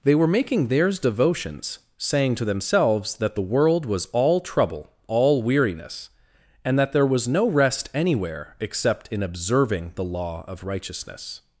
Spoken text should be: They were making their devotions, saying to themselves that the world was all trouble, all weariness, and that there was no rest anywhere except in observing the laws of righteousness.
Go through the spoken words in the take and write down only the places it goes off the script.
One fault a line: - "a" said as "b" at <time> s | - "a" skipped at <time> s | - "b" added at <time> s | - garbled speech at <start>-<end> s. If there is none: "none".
- "their" said as "theirs" at 0.7 s
- "laws" said as "law" at 10.0 s